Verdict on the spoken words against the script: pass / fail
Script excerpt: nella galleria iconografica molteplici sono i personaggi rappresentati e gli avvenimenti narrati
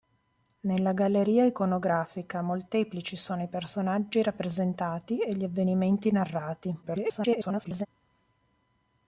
fail